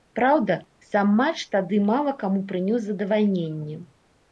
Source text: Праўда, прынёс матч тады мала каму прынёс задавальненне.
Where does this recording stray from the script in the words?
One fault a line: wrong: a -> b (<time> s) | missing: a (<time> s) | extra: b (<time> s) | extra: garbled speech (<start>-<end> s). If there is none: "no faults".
wrong: прынёс -> сам (0.9 s)